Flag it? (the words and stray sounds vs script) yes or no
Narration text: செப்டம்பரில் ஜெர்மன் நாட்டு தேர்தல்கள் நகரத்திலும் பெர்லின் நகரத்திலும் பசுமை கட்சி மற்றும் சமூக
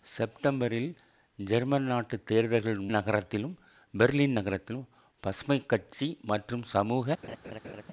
yes